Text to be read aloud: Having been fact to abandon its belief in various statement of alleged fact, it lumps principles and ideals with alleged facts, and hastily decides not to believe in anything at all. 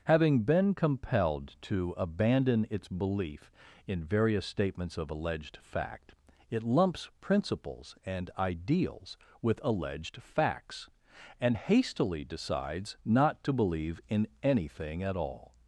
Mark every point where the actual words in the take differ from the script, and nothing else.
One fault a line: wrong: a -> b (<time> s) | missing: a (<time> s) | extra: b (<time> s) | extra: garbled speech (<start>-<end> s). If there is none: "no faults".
wrong: fact -> compelled (0.7 s)
wrong: statement -> statements (4.5 s)